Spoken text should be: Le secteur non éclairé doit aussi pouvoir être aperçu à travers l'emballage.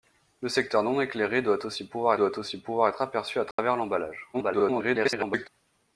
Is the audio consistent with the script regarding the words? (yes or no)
no